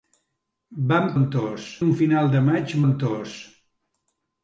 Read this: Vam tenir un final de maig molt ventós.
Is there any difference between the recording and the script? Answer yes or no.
yes